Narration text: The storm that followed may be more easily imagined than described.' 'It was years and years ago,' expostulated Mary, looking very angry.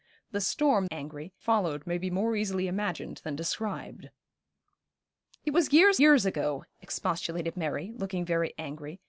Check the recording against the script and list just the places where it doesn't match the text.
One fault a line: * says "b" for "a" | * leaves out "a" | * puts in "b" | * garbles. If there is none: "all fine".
* says "angry" for "that"
* leaves out "and"